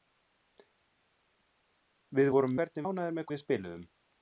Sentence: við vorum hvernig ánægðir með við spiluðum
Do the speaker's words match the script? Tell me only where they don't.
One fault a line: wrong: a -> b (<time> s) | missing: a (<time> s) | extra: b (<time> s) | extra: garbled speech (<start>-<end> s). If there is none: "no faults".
no faults